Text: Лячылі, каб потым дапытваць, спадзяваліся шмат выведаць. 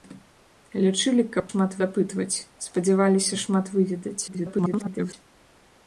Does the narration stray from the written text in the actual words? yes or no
yes